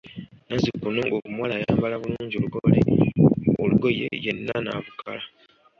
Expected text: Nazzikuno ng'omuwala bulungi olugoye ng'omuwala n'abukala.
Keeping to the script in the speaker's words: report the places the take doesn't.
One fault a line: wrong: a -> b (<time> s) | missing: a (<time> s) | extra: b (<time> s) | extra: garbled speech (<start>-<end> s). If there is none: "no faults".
extra: ayambala (1.6 s)
wrong: ng'omuwala -> yenna (4.2 s)